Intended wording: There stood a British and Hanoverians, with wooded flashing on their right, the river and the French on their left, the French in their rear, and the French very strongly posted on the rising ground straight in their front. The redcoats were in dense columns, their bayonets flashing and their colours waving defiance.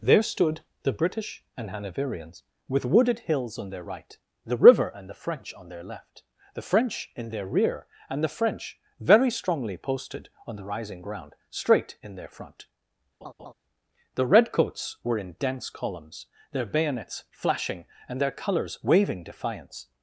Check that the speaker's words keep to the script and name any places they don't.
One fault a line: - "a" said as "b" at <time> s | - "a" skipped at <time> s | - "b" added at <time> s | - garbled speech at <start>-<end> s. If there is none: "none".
- "a" said as "the" at 0.8 s
- "flashing" said as "hills" at 3.2 s